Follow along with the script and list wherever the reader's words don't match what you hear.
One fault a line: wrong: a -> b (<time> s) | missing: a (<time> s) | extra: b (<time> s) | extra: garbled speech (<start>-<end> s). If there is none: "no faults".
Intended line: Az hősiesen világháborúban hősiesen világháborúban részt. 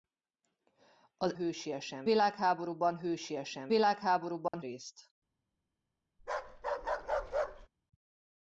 no faults